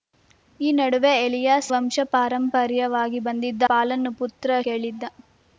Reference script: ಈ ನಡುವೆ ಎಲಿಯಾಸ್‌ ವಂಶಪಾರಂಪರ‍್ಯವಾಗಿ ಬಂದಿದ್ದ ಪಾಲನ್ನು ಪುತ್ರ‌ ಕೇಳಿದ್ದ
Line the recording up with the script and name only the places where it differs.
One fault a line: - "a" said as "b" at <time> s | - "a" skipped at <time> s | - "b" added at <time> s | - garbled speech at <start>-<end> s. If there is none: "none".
none